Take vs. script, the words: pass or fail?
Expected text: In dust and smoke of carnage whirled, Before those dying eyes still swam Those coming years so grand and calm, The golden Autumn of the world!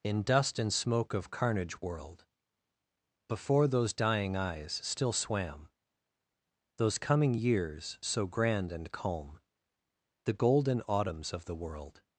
fail